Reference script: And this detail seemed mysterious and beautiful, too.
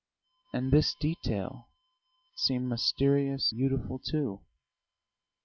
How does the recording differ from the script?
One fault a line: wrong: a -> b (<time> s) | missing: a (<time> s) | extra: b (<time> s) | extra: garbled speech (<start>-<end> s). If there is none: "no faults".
missing: and (3.5 s)